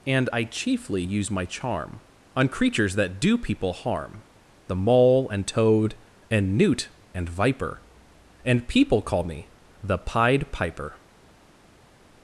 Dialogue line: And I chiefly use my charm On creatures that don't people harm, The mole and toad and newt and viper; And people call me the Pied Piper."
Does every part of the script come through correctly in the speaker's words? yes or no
no